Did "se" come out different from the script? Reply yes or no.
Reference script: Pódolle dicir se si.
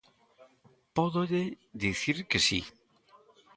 yes